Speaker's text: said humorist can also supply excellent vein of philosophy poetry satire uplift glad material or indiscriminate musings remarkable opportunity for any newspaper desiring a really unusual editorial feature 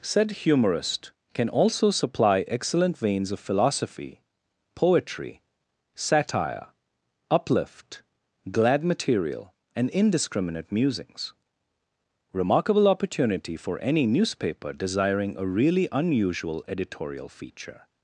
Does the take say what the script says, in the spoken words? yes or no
no